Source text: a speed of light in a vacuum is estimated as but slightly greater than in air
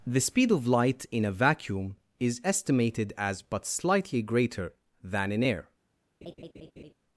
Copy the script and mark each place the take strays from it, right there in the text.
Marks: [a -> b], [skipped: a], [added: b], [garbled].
[a -> the] speed of light in a vacuum is estimated as but slightly greater than in air